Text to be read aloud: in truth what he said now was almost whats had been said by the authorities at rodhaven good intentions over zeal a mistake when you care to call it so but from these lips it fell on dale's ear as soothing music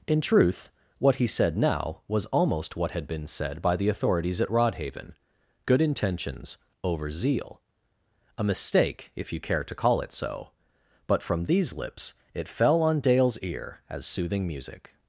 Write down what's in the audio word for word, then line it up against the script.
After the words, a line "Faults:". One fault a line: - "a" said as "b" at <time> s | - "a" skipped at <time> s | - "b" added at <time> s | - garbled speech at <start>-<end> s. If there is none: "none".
in truth what he said now was almost what had been said by the authorities at rodhaven good intentions over zeal a mistake if you care to call it so but from these lips it fell on dale's ear as soothing music
Faults:
- "whats" said as "what" at 2.8 s
- "when" said as "if" at 9.2 s